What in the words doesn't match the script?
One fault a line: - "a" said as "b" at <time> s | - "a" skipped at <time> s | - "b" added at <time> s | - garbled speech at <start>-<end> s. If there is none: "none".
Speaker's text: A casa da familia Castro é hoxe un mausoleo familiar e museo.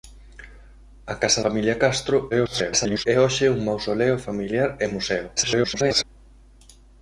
- "da" skipped at 1.4 s
- garbled speech at 2.3-3.1 s
- garbled speech at 5.4-6.0 s